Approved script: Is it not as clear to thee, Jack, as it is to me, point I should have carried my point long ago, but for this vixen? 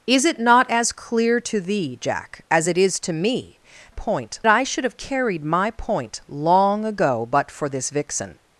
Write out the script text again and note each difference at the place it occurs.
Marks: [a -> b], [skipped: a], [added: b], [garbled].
Is it not as clear to thee, Jack, as it is to me, point I should have carried my point long ago, but for this vixen?